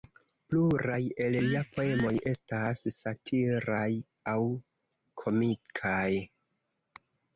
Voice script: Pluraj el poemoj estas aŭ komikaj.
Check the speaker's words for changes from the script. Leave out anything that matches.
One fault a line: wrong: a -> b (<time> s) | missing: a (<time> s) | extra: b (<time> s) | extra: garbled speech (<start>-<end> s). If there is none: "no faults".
extra: lia (1.4 s)
extra: satiraj (3.0 s)